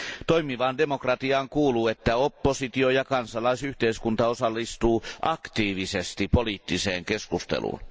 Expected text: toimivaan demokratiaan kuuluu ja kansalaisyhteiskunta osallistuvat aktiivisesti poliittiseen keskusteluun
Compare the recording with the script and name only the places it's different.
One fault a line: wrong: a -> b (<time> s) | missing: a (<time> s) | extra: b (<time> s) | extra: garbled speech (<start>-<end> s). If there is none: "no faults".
extra: että oppositio (1.9 s)